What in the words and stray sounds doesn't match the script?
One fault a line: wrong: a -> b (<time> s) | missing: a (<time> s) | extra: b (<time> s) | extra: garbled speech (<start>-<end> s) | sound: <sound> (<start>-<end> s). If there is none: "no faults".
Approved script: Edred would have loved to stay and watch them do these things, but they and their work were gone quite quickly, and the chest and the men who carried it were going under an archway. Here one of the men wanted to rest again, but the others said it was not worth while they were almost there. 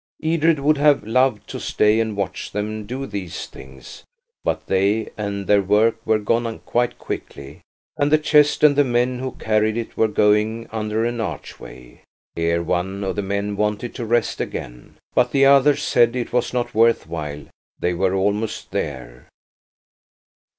no faults